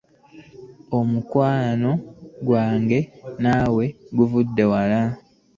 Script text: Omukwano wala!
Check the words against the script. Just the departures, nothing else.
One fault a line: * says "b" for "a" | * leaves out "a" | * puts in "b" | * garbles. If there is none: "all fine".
* puts in "gwange naawe guvudde"